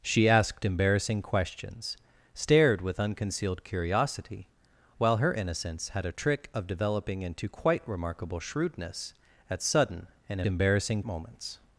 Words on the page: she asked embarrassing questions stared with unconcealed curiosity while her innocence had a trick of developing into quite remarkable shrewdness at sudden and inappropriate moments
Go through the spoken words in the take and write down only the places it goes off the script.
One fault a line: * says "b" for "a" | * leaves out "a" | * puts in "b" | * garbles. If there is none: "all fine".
* says "embarrassing" for "inappropriate"